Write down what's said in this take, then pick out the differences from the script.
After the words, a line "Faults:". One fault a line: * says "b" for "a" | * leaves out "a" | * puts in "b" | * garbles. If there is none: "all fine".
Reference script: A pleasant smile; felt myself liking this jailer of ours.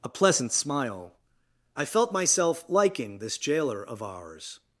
A pleasant smile; I felt myself liking this jailer of ours.
Faults:
* puts in "I"